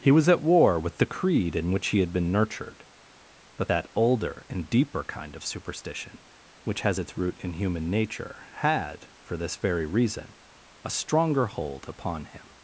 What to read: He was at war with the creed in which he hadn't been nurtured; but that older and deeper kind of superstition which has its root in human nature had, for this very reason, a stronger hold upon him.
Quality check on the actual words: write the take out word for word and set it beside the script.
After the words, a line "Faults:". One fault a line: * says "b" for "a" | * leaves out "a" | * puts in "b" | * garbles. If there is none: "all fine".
He was at war with the creed in which he had been nurtured; but that older and deeper kind of superstition which has its root in human nature had, for this very reason, a stronger hold upon him.
Faults:
* says "had" for "hadn't"